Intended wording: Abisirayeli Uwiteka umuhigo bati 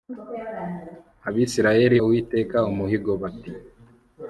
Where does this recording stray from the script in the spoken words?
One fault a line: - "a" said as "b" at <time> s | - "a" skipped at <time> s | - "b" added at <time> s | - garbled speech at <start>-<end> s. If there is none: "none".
none